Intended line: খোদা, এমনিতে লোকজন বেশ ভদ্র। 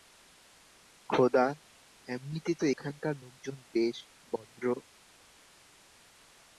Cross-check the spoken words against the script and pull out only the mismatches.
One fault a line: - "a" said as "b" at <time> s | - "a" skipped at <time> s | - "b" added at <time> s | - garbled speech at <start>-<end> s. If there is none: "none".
- "তো এখানকার" added at 2.5 s